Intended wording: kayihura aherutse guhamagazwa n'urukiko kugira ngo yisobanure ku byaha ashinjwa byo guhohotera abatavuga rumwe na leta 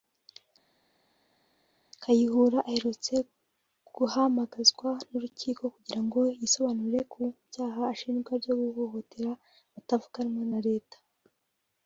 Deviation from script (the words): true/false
false